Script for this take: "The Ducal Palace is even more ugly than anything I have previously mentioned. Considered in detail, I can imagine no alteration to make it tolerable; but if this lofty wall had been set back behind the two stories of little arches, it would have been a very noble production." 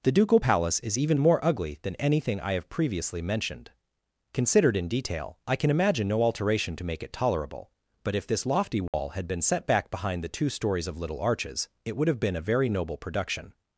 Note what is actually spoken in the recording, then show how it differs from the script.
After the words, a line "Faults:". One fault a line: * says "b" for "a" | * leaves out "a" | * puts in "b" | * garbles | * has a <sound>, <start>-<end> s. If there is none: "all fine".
"The Ducal Palace is even more ugly than anything I have previously mentioned. Considered in detail, I can imagine no alteration to make it tolerable; but if this lofty wall had been set back behind the two stories of little arches, it would have been a very noble production."
Faults:
* has a dropout, 8.9-8.9 s